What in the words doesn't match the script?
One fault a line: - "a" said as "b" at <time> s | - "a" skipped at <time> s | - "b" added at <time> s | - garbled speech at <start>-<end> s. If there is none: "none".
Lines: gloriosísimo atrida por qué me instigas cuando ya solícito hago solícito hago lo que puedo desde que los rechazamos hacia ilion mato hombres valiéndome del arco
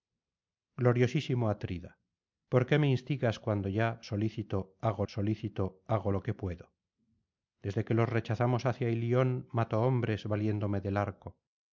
none